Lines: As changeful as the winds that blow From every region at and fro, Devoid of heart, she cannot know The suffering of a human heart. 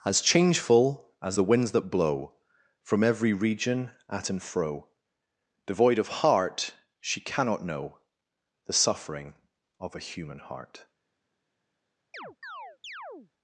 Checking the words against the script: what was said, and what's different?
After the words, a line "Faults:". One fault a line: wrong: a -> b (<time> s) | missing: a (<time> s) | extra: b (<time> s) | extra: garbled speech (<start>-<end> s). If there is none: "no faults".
As changeful as the winds that blow From every region at and fro, Devoid of heart, she cannot know The suffering of a human heart.
Faults:
no faults